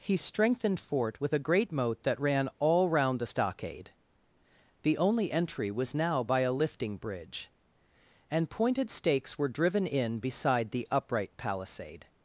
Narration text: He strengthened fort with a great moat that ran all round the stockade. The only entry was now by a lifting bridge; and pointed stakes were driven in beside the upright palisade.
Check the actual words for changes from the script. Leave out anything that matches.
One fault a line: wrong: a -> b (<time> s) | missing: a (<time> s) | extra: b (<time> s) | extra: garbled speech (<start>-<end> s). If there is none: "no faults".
no faults